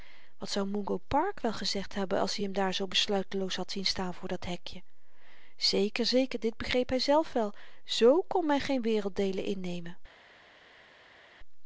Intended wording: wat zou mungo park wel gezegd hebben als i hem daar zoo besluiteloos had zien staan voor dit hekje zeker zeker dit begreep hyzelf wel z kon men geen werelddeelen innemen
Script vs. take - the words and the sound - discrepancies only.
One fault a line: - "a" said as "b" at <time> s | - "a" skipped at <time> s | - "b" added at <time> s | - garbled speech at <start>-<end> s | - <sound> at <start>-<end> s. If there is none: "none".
- "dit" said as "dat" at 4.3 s